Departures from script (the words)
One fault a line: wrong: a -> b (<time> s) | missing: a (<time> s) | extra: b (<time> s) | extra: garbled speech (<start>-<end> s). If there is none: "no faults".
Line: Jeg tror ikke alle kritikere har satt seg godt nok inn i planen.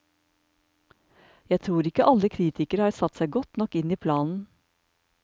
no faults